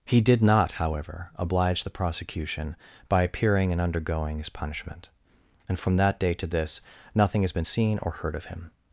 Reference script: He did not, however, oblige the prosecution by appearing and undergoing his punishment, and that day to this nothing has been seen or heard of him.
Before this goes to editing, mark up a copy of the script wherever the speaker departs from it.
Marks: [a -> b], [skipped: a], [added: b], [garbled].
He did not, however, oblige the prosecution by appearing and undergoing his punishment, and [added: from] that day to this nothing has been seen or heard of him.